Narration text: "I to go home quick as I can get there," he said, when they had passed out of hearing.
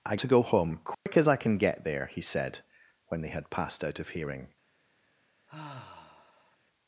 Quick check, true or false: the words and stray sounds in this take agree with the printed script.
false